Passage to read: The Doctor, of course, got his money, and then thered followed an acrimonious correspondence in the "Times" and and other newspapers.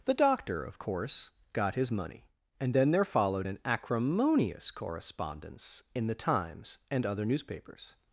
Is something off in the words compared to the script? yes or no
yes